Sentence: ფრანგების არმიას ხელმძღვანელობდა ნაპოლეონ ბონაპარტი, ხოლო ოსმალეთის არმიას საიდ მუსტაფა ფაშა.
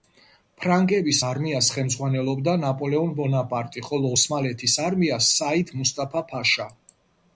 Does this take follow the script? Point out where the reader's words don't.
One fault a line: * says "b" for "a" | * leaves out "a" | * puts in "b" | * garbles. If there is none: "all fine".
all fine